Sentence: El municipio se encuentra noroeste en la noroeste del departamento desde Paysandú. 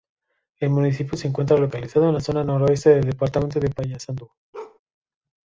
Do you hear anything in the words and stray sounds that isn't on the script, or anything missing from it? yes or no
yes